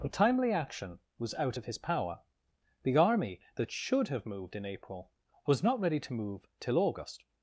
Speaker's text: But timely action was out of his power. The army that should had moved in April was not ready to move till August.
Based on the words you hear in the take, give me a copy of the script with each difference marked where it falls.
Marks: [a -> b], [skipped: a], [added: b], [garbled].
But timely action was out of his power. The army that should [had -> have] moved in April was not ready to move till August.